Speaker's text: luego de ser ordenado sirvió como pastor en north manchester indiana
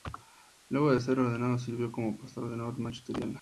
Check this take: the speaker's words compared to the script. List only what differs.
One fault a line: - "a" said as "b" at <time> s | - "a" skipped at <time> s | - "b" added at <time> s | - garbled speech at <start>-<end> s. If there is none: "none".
none